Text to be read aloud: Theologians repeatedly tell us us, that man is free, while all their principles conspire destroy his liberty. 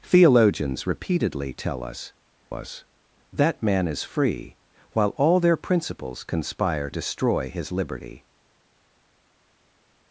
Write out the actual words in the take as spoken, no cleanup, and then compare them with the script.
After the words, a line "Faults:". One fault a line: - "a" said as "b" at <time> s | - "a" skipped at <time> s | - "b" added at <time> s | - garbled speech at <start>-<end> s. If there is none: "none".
Theologians repeatedly tell us us, that man is free, while all their principles conspire destroy his liberty.
Faults:
none